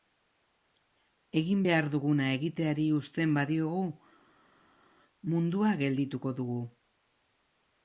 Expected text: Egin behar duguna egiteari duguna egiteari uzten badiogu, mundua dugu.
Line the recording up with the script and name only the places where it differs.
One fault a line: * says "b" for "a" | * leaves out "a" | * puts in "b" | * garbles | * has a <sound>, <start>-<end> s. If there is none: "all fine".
* leaves out "duguna egiteari"
* puts in "geldituko"